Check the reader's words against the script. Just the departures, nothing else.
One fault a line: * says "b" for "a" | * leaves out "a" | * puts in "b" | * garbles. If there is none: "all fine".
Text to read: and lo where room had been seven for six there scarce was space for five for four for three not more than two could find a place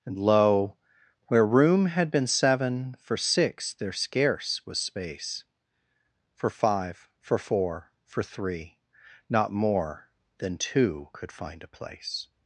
all fine